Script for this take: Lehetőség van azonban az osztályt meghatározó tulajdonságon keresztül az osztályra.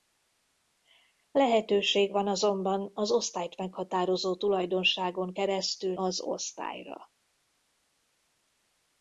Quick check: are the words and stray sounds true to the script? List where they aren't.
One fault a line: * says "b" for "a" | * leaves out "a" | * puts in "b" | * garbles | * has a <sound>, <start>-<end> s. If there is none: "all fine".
all fine